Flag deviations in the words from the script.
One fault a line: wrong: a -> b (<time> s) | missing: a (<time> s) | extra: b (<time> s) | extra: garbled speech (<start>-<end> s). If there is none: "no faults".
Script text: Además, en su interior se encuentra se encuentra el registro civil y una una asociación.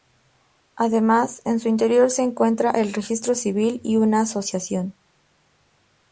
missing: se encuentra (2.7 s)
missing: una (4.2 s)